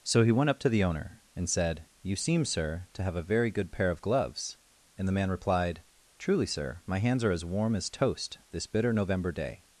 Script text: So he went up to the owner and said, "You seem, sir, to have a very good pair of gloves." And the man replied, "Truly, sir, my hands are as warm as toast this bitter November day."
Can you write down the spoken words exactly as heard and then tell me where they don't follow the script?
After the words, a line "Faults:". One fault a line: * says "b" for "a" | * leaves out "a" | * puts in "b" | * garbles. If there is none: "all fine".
So he went up to the owner and said, "You seem, sir, to have a very good pair of gloves." And the man replied, "Truly, sir, my hands are as warm as toast this bitter November day."
Faults:
all fine